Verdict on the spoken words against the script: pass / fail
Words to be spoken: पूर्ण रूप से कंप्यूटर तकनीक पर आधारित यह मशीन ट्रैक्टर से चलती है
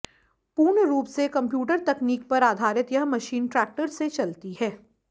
pass